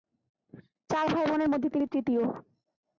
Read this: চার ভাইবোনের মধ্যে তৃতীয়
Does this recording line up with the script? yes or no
no